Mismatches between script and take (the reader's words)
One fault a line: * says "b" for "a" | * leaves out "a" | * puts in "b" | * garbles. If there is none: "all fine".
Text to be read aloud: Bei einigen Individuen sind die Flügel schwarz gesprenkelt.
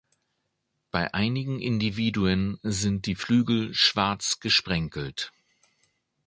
all fine